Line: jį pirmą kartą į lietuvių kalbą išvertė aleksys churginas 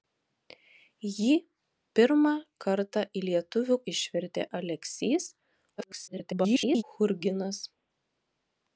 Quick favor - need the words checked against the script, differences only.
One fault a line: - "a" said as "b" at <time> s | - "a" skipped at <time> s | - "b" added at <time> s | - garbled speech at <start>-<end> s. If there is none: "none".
- "kalbą" skipped at 3.8 s
- garbled speech at 5.8-6.8 s